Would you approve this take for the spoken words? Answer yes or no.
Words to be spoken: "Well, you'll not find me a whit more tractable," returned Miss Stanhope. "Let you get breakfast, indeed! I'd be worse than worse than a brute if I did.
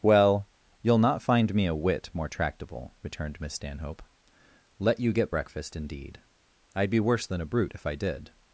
no